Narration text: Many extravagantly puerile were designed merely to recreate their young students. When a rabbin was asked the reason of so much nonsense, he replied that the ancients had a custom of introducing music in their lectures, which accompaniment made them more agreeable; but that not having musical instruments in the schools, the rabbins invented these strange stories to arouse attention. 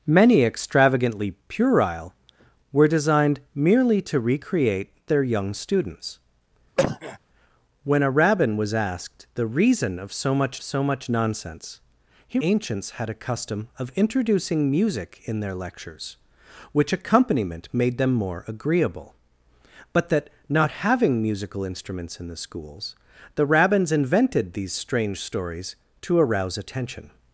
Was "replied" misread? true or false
true